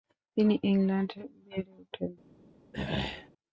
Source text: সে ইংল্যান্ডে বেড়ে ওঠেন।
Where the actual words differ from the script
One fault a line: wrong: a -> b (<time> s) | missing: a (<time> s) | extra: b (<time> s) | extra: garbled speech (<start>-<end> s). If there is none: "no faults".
wrong: সে -> তিনি (0.4 s)